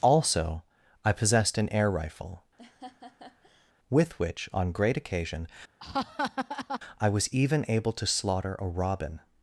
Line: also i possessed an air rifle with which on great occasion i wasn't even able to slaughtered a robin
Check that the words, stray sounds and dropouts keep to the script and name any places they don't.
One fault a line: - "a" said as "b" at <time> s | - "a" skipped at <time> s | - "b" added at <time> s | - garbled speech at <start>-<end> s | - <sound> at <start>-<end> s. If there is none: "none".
- laugh at 2.6-3.7 s
- laugh at 5.8-6.8 s
- "wasn't" said as "was" at 7.1 s
- "slaughtered" said as "slaughter" at 8.1 s